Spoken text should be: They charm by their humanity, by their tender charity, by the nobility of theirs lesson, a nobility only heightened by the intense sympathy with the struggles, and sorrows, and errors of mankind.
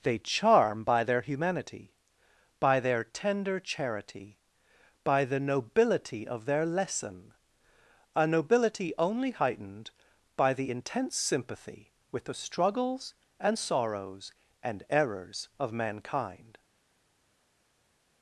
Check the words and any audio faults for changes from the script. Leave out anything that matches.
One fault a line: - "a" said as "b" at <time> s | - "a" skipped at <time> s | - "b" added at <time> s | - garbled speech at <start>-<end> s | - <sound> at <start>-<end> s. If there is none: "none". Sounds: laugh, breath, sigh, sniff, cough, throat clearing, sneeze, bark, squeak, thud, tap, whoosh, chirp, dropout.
- "theirs" said as "their" at 6.5 s